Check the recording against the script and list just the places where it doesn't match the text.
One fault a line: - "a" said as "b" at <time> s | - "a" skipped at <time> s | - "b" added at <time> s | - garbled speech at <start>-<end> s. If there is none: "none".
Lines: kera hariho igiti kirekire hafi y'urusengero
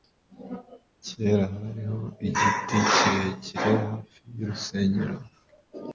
none